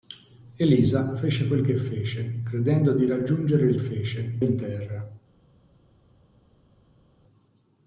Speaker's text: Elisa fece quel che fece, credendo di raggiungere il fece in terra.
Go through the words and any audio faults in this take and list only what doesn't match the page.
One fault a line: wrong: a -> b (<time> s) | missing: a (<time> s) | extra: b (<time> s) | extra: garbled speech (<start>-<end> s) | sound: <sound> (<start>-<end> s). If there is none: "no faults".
no faults